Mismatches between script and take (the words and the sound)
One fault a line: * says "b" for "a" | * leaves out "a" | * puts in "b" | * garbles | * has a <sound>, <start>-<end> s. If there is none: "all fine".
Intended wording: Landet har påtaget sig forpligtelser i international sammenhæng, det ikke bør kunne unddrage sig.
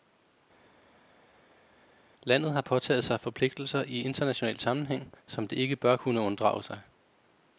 * puts in "som"